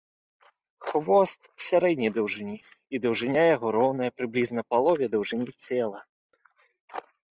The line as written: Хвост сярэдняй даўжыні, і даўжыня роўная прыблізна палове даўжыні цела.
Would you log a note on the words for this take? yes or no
yes